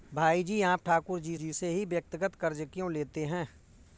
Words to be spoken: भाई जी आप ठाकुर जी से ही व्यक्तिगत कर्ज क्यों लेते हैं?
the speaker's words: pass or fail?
fail